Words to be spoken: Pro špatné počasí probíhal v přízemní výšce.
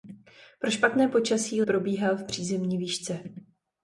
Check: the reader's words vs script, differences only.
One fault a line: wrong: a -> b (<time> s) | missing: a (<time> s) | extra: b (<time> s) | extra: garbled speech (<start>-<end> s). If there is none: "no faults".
no faults